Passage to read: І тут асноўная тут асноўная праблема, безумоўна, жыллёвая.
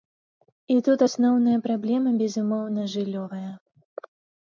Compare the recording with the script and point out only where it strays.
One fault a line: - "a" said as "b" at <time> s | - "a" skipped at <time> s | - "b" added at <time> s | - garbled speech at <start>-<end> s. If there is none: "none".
- "тут асноўная" skipped at 1.6 s